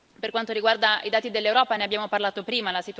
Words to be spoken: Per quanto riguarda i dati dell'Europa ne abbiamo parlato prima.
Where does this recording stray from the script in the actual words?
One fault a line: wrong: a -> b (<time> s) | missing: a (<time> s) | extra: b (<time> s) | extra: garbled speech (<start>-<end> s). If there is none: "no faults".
no faults